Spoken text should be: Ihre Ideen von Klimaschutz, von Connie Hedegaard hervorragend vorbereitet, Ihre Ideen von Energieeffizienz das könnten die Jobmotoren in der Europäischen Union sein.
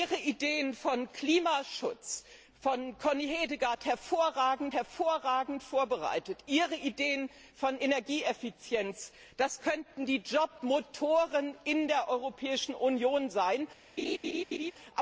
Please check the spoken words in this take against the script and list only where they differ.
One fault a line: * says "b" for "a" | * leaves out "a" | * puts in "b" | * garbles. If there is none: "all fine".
* puts in "hervorragend"